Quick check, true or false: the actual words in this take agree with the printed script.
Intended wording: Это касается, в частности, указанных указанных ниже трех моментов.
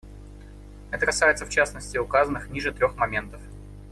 false